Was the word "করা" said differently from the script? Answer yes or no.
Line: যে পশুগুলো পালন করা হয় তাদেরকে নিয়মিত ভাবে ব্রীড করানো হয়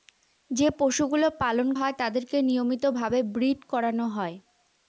yes